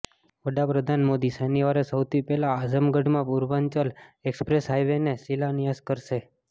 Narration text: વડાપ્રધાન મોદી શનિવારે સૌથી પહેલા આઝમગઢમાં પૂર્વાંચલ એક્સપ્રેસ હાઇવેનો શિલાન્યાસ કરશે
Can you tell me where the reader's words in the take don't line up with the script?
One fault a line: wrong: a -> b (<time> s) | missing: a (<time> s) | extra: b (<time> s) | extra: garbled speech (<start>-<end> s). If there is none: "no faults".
no faults